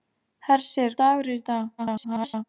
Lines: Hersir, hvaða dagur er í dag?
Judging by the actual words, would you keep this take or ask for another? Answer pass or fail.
fail